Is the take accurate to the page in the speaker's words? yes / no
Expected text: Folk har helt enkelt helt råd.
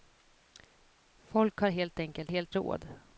yes